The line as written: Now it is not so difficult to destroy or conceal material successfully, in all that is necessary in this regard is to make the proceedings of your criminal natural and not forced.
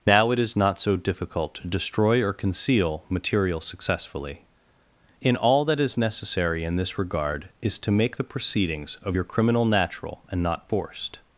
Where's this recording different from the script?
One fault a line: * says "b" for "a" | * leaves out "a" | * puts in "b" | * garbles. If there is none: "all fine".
all fine